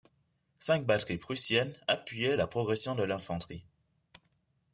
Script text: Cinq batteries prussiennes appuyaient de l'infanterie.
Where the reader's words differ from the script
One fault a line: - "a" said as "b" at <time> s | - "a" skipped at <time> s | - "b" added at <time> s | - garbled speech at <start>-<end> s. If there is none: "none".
- "la progression" added at 2.3 s